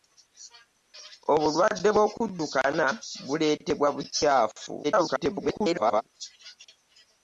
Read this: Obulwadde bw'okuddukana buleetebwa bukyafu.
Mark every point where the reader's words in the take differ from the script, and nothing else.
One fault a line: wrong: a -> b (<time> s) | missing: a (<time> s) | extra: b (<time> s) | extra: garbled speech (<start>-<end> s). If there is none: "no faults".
extra: garbled speech (4.8-6.0 s)